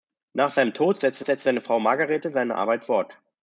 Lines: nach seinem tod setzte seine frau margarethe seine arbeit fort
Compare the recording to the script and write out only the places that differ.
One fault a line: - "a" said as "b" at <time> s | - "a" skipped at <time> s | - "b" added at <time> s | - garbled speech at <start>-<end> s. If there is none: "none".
- "setzte" added at 1.2 s